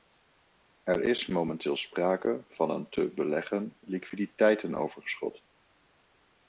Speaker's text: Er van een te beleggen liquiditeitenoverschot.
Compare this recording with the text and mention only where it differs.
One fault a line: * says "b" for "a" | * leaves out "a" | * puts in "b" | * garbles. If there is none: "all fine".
* puts in "is momenteel sprake"